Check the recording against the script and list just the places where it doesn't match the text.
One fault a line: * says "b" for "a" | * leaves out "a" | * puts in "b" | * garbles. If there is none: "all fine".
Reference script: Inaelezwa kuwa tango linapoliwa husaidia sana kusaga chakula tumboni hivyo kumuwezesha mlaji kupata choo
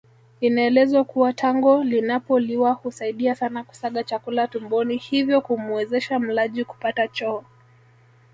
all fine